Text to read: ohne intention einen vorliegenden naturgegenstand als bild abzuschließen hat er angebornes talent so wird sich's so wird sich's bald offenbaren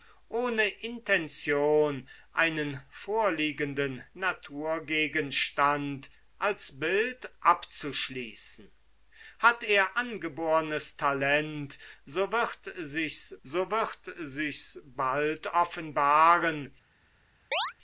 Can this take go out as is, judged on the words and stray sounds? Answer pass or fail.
fail